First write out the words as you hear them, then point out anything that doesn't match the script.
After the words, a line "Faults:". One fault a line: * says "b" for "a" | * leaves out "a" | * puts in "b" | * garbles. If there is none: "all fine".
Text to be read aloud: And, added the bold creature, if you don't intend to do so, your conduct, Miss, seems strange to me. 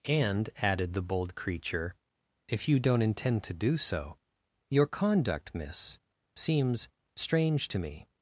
And, added the bold creature, if you don't intend to do so, your conduct, Miss, seems strange to me.
Faults:
all fine